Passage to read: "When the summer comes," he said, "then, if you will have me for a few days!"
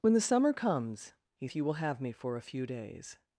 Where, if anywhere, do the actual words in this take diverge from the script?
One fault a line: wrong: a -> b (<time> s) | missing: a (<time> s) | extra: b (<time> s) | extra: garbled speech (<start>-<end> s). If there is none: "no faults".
missing: said then (1.5 s)